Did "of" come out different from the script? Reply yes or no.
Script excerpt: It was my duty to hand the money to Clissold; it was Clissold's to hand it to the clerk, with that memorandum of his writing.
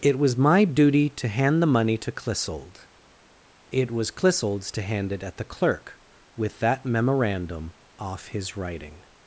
yes